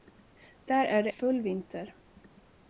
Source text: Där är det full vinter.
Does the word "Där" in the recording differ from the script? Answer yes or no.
no